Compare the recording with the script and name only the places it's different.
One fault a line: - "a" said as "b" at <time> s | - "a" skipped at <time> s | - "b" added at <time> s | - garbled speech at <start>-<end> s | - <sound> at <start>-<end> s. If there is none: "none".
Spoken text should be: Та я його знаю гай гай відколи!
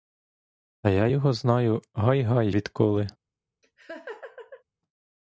- laugh at 3.6-4.6 s